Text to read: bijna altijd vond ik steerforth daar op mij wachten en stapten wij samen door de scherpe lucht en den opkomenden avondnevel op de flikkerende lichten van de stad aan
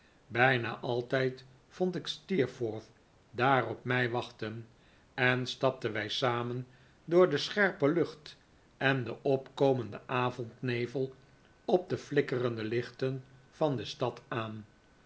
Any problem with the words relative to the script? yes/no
no